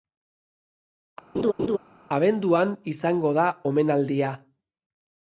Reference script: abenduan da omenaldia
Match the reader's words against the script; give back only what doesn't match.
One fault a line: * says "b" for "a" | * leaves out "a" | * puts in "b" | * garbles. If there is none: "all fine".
* puts in "izango"